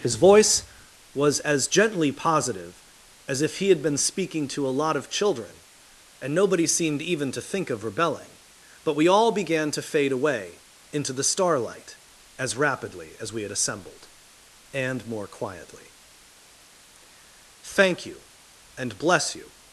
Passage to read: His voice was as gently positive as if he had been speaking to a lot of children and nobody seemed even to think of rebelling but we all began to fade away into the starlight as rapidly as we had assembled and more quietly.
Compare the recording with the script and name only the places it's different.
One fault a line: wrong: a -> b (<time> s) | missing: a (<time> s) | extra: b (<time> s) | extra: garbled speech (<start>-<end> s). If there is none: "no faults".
extra: Thank you and bless you (17.6 s)